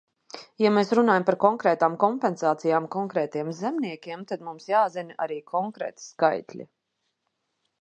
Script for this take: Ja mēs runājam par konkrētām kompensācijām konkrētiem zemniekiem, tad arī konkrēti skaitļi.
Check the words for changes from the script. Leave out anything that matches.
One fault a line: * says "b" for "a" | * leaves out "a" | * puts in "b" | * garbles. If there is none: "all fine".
* puts in "mums jāzina"